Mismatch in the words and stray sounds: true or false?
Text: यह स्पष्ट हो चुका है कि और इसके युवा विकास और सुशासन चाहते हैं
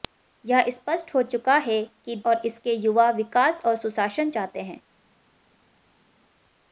false